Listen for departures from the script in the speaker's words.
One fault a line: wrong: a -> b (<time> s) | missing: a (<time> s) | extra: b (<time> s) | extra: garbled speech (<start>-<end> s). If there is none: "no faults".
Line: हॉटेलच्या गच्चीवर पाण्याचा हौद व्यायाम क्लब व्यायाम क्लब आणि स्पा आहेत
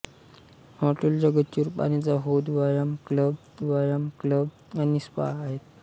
no faults